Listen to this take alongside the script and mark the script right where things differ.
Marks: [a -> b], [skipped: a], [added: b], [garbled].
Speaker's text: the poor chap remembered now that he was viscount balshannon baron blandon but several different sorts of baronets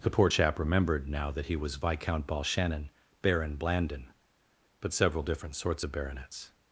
the poor chap remembered now that he was viscount balshannon baron blandon but several different sorts of baronets